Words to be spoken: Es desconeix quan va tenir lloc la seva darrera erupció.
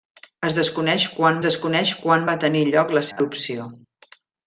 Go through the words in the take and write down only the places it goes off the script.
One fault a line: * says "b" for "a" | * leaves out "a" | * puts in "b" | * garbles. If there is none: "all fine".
* puts in "desconeix quan"
* leaves out "seva darrera"